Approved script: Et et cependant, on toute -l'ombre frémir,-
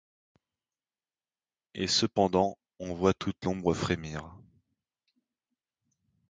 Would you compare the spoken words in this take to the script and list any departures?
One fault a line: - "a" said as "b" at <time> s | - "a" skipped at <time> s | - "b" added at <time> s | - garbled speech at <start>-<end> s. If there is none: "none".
- "et" skipped at 1.9 s
- "voit" added at 3.0 s